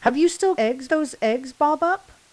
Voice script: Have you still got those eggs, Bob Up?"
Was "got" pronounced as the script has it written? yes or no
no